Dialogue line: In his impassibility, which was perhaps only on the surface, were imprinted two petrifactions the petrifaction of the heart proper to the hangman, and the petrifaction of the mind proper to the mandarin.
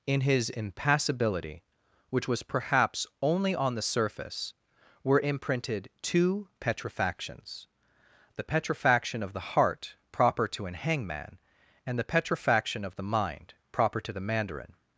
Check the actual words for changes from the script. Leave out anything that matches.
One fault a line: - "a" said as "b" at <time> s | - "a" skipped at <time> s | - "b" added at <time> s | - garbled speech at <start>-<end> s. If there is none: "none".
- "the" said as "an" at 10.6 s